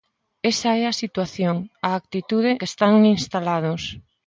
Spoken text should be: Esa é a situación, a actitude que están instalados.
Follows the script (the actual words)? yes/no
yes